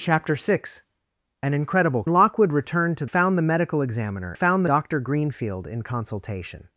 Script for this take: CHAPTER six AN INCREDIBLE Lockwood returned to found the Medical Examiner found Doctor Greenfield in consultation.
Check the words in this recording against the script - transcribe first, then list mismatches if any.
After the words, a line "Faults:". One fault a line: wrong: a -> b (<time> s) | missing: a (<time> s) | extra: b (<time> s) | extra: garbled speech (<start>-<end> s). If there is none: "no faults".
CHAPTER six AN INCREDIBLE Lockwood returned to found the Medical Examiner found Doctor Greenfield in consultation.
Faults:
no faults